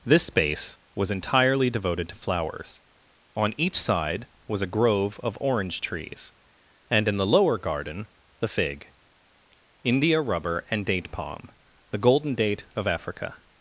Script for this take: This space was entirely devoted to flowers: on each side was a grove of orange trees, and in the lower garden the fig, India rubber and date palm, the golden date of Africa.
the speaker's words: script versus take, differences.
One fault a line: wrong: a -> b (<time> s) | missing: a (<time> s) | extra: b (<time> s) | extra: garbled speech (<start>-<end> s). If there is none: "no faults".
no faults